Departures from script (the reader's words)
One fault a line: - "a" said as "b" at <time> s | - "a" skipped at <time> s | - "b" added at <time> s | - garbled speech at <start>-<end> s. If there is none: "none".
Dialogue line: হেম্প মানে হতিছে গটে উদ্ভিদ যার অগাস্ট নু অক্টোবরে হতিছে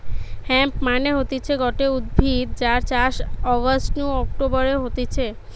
- "চাষ" added at 2.9 s